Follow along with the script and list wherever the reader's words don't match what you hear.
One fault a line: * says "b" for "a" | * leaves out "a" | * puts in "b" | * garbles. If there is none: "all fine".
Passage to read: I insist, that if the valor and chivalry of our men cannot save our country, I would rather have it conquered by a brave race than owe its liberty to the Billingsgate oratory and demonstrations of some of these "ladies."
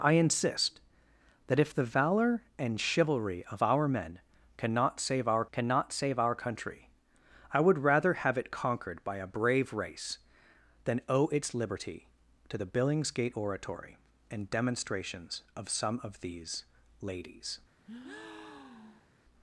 * puts in "cannot save our"